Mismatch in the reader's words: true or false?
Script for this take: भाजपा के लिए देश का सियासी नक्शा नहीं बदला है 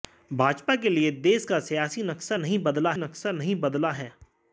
true